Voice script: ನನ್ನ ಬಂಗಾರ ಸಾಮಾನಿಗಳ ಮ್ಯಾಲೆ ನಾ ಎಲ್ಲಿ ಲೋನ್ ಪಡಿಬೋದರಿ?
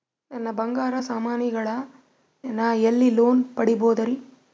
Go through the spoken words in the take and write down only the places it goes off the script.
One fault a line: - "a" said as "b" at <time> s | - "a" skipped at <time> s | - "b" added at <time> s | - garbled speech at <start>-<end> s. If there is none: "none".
- "ಮ್ಯಾಲೆ" skipped at 1.7 s